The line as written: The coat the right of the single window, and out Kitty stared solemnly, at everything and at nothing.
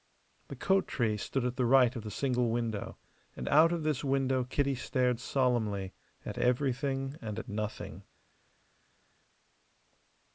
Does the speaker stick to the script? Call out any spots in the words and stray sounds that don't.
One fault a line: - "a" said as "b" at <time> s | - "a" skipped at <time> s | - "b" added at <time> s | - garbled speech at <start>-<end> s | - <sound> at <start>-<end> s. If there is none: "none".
- "tree stood at" added at 0.9 s
- "of this window" added at 3.7 s